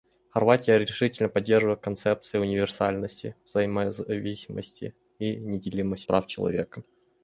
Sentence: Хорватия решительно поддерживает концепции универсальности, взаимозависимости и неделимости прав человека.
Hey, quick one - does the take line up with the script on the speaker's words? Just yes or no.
yes